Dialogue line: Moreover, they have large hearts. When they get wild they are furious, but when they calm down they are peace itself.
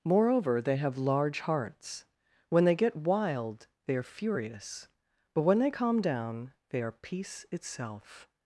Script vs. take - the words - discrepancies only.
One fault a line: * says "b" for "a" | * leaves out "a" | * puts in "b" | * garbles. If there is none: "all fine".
all fine